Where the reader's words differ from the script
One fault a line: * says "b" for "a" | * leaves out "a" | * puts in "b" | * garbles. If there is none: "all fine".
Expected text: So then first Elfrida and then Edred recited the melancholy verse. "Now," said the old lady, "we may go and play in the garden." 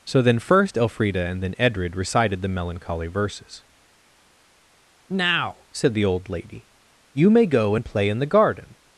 * says "verses" for "verse"
* says "you" for "we"